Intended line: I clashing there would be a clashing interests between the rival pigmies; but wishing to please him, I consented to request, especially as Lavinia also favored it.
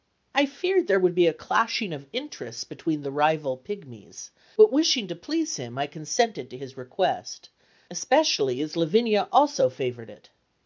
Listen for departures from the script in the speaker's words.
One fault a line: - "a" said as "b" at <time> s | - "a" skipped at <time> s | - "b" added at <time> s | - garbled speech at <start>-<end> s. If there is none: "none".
- "clashing" said as "feared" at 0.5 s
- "of" added at 1.9 s
- "his" added at 6.5 s